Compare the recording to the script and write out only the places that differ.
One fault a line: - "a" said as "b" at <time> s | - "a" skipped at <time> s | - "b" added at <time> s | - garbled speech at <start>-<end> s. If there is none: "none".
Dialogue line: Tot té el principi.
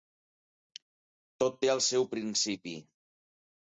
- "seu" added at 1.9 s